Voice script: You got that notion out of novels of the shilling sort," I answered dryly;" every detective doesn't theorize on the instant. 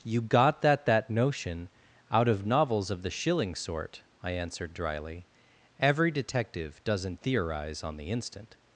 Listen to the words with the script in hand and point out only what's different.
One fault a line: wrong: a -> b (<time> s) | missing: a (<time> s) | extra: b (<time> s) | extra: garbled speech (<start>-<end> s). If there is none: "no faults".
extra: that (0.9 s)